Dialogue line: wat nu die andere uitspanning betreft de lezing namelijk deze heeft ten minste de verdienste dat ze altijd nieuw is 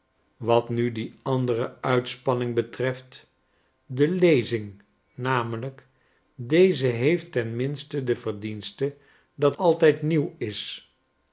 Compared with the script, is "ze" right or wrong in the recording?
wrong